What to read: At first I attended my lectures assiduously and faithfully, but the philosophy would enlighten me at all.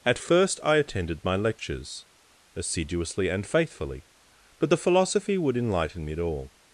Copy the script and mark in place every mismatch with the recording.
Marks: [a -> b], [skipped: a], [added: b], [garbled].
At first I attended my lectures assiduously and faithfully, but the philosophy would enlighten me at all.